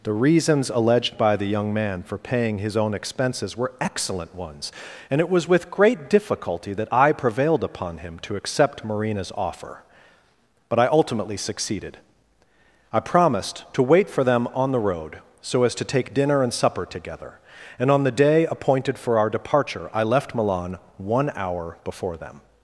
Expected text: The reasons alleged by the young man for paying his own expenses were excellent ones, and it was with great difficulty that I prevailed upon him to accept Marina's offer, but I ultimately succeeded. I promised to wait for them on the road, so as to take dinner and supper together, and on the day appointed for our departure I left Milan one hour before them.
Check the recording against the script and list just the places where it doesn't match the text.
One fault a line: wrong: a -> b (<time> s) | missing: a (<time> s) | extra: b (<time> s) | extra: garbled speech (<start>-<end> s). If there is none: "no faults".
no faults